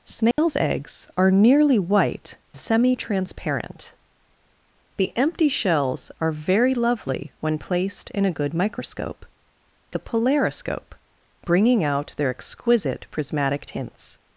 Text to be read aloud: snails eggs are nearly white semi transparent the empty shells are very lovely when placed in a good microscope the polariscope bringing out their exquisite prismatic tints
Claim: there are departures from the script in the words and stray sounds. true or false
true